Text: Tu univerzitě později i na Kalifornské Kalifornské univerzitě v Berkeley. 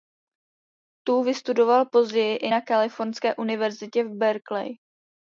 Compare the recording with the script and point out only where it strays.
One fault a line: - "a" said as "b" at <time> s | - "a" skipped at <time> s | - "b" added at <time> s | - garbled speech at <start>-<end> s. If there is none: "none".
- "univerzitě" said as "vystudoval" at 1.2 s
- "Kalifornské" skipped at 3.4 s